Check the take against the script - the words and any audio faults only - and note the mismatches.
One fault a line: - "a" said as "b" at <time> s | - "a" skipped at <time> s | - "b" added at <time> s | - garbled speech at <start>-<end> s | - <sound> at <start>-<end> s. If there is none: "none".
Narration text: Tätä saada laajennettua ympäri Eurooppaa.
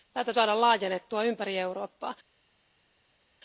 none